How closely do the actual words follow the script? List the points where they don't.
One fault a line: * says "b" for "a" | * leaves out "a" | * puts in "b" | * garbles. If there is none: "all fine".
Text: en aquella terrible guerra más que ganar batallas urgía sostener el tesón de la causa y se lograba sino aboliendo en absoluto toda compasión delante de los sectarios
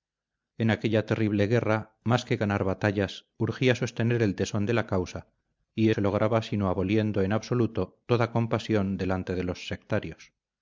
all fine